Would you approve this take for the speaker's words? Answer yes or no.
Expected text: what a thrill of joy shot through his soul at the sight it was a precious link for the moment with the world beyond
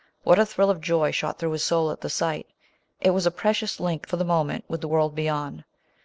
yes